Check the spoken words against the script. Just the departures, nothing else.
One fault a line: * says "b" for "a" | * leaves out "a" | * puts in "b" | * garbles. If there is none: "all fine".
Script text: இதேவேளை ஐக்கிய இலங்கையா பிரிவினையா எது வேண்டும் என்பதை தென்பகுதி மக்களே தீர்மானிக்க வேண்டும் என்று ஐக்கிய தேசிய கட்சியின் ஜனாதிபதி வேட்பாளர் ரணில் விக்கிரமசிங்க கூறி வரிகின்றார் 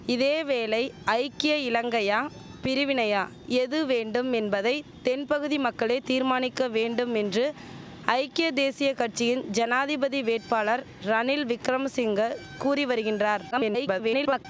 * garbles